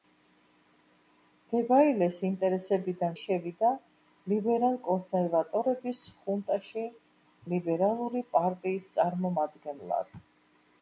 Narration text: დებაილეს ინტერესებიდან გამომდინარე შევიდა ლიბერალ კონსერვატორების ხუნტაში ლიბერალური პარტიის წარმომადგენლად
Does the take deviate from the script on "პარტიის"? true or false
false